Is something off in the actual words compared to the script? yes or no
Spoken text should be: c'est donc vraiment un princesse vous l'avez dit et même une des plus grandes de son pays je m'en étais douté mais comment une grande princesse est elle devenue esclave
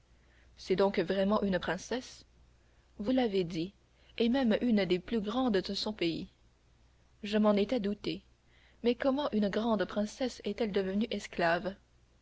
yes